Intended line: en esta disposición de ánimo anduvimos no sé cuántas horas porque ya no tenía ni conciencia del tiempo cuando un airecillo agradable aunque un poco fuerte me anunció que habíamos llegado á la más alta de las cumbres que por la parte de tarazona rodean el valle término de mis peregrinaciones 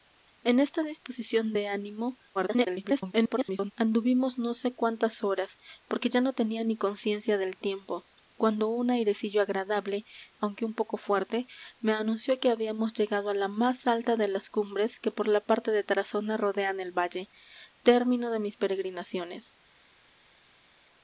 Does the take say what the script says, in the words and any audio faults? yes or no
no